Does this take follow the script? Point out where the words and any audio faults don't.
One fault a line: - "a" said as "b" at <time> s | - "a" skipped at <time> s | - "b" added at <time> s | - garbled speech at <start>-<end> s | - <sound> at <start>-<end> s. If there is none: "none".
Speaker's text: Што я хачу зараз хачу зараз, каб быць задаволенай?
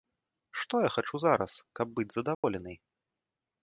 - "хачу зараз" skipped at 1.5 s
- dropout at 2.3-2.4 s